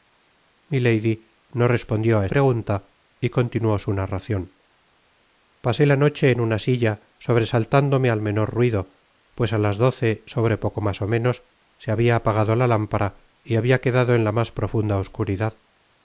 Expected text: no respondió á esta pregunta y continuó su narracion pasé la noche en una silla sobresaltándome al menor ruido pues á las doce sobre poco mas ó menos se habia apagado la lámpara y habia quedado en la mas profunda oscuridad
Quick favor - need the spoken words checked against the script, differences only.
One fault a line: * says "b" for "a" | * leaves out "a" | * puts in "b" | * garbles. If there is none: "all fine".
* leaves out "esta"